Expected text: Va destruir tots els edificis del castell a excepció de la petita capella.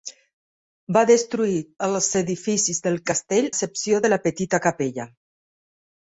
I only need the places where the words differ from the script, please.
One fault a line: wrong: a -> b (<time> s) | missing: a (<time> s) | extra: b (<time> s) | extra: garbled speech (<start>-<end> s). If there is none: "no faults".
missing: tots (1.6 s)
missing: a (3.5 s)